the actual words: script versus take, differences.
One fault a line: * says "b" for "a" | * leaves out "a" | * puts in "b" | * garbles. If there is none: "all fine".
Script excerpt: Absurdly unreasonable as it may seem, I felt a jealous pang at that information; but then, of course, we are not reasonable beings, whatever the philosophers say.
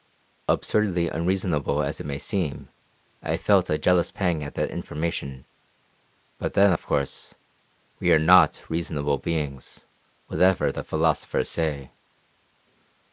all fine